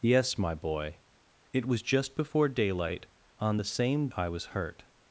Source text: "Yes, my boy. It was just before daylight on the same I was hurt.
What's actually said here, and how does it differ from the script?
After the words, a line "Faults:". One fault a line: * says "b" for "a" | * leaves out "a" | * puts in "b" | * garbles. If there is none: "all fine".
"Yes, my boy. It was just before daylight on the same I was hurt.
Faults:
all fine